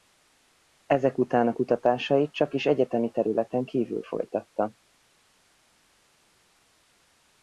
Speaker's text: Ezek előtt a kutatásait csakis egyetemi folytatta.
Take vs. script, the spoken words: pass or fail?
fail